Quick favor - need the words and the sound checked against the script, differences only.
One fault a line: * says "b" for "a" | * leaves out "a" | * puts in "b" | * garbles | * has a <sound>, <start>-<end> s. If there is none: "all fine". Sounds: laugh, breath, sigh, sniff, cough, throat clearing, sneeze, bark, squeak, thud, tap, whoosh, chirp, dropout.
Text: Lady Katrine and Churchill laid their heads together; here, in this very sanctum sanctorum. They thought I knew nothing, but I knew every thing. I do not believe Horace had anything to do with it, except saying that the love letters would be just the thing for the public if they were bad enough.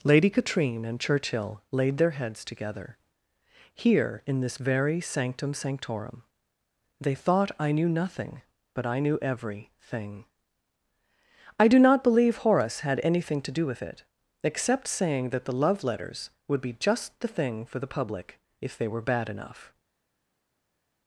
all fine